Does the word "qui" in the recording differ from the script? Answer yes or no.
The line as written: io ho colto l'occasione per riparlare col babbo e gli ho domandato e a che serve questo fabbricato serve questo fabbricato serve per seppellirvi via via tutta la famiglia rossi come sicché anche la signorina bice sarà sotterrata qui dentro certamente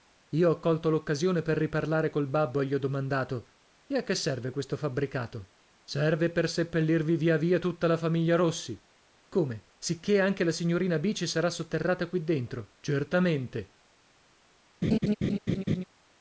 no